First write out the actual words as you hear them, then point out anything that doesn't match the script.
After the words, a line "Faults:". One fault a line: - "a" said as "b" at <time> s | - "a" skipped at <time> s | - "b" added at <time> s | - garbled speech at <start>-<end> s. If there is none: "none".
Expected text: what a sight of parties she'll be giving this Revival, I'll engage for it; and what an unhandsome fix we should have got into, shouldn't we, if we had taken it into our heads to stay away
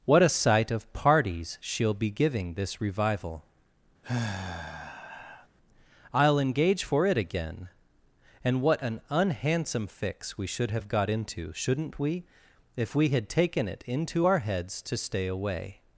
what a sight of parties she'll be giving this Revival, I'll engage for it; again and what an unhandsome fix we should have got into, shouldn't we, if we had taken it into our heads to stay away
Faults:
- "again" added at 7.2 s